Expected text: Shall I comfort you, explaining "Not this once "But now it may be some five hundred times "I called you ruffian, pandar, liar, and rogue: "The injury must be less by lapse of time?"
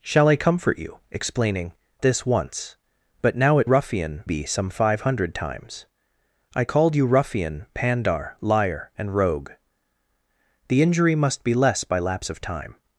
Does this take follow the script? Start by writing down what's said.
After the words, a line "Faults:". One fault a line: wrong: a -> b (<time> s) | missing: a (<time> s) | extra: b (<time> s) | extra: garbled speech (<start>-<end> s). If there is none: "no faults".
Shall I comfort you, explaining "This once "But now it ruffian be some five hundred times "I called you ruffian, pandar, liar, and rogue: "The injury must be less by lapse of time?"
Faults:
missing: Not (1.7 s)
wrong: may -> ruffian (3.6 s)